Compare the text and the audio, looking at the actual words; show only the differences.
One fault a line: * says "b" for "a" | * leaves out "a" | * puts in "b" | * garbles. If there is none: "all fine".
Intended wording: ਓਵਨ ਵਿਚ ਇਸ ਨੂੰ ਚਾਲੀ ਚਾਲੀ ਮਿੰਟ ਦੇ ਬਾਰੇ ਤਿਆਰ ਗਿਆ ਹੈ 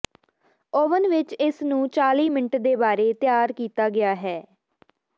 * leaves out "ਚਾਲੀ"
* puts in "ਕੀਤਾ"